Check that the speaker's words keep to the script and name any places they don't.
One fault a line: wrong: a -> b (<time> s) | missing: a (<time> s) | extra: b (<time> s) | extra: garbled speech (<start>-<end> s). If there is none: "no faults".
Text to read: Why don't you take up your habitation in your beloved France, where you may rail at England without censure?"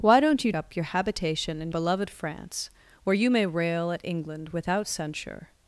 missing: take (0.5 s)
missing: your (1.7 s)